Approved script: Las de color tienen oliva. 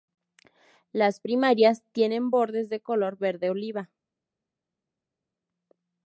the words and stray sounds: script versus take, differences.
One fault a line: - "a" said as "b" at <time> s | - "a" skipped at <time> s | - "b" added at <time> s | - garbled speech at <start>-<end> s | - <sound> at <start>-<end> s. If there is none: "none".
- "primarias tienen bordes" added at 1.2 s
- "tienen" said as "verde" at 3.2 s